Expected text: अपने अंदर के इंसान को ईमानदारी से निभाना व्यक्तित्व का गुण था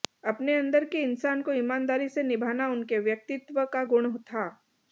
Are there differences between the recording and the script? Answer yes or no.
yes